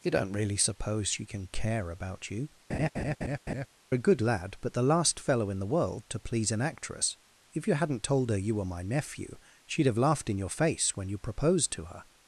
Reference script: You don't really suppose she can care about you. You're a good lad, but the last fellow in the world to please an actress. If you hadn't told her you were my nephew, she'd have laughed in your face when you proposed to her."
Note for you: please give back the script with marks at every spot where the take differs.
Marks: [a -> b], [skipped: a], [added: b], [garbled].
You don't really suppose she can care about you. [skipped: You're] a good lad, but the last fellow in the world to please an actress. If you hadn't told her you were my nephew, she'd have laughed in your face when you proposed to her."